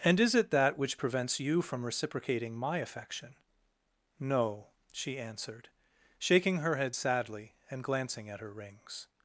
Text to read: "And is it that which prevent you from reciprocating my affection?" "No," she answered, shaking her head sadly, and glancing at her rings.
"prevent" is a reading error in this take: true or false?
true